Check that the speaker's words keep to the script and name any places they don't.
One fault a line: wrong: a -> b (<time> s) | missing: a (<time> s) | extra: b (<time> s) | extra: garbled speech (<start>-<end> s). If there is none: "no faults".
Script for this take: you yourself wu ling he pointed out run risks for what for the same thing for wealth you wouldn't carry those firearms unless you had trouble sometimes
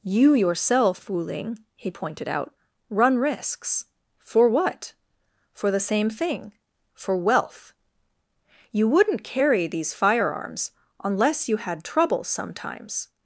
wrong: those -> these (9.7 s)